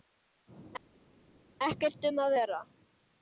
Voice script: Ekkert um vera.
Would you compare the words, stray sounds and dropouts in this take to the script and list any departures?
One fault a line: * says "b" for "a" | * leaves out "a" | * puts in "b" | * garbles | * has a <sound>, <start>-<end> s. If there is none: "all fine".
* puts in "að"